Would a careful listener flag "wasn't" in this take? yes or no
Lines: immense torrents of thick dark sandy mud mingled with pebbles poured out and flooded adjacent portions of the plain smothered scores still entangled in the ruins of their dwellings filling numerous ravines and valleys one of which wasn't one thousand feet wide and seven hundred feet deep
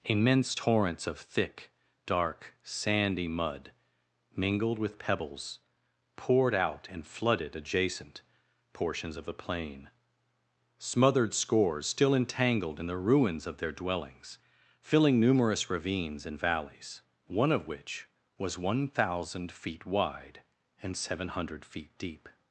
yes